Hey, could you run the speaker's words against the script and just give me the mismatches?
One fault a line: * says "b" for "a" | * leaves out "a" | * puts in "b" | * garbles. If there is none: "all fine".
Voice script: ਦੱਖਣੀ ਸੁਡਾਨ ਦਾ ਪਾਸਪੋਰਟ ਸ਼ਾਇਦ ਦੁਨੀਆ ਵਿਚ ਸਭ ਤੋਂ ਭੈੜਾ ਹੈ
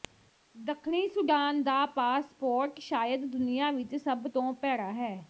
all fine